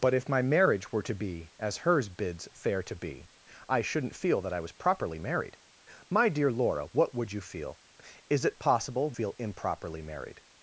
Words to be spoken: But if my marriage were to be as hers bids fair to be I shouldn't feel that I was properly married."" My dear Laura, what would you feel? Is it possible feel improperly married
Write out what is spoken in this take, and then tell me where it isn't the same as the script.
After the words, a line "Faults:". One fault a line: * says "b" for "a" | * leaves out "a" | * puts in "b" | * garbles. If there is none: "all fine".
But if my marriage were to be as hers bids fair to be I shouldn't feel that I was properly married."" My dear Laura, what would you feel? Is it possible feel improperly married
Faults:
all fine